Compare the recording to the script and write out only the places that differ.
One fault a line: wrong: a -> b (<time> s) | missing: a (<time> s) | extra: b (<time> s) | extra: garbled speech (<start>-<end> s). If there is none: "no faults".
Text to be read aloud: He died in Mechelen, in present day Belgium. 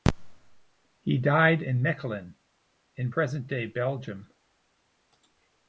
no faults